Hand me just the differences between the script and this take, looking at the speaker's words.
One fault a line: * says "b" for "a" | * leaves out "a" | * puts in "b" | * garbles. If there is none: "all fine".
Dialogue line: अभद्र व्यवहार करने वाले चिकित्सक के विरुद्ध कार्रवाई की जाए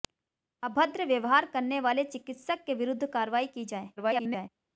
* garbles